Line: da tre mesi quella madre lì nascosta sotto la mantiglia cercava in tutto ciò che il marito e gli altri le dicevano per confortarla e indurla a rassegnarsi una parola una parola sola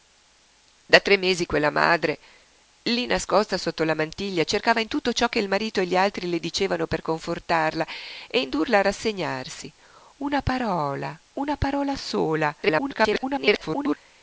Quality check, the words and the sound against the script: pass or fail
fail